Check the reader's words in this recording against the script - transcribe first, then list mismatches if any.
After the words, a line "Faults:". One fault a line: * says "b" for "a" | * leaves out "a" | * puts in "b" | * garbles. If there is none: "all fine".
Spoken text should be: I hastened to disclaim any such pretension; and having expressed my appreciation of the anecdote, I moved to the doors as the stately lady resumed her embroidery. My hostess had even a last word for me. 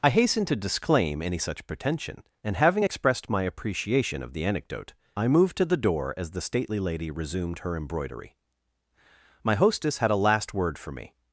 I hastened to disclaim any such pretension; and having expressed my appreciation of the anecdote, I moved to the door as the stately lady resumed her embroidery. My hostess had a last word for me.
Faults:
* says "door" for "doors"
* leaves out "even"